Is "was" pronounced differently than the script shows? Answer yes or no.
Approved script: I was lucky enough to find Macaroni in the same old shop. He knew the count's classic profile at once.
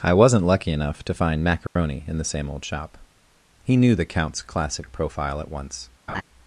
yes